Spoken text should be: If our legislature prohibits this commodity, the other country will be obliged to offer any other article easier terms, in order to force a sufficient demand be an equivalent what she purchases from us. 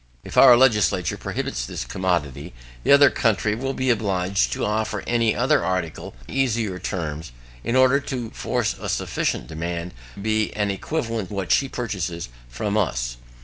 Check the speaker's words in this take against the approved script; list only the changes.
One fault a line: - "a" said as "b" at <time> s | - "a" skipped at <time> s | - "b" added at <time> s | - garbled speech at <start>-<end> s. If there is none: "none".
none